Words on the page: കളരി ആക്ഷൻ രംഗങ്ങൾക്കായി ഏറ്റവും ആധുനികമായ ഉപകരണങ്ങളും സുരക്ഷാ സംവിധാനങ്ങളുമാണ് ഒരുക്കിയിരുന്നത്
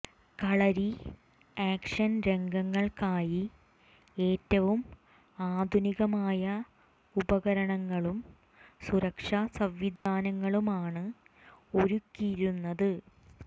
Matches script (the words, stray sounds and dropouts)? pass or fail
fail